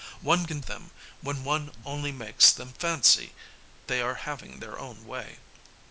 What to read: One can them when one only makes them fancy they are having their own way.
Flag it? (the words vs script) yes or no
no